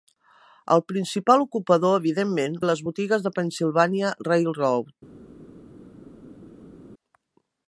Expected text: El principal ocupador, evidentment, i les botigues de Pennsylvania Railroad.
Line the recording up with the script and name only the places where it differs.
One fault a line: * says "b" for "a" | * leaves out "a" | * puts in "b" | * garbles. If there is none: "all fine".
all fine